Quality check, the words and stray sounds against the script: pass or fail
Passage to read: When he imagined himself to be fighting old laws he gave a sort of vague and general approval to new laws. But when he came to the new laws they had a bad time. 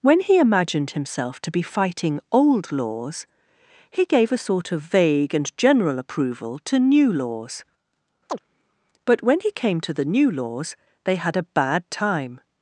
fail